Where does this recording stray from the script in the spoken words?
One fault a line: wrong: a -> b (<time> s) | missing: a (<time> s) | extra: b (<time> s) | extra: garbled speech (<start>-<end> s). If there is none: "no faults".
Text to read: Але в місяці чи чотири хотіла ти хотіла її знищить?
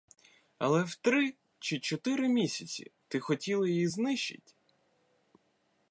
wrong: місяці -> три (0.9 s)
wrong: хотіла -> місяці (2.3 s)